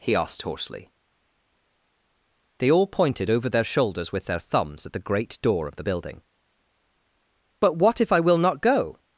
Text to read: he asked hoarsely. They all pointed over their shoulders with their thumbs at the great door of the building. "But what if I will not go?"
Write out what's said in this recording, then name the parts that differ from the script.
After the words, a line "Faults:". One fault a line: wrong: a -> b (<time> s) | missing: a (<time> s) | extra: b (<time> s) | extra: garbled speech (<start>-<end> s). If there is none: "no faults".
he asked hoarsely. They all pointed over their shoulders with their thumbs at the great door of the building. "But what if I will not go?"
Faults:
no faults